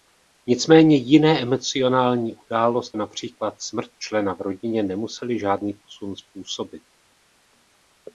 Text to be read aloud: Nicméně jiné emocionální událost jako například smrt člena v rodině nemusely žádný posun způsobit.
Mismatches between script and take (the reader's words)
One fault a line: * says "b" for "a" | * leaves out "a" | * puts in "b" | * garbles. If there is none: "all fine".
* leaves out "jako"